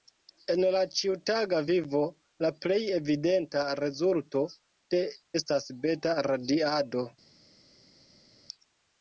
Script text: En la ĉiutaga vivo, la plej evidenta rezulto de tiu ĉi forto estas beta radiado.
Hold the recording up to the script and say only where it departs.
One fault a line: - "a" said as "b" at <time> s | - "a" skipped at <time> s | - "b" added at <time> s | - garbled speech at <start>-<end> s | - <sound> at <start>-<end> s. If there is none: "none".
- "tiu ĉi forto" skipped at 5.0 s